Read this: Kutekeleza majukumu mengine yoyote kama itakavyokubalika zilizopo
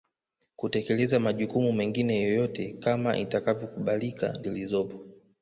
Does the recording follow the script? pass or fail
pass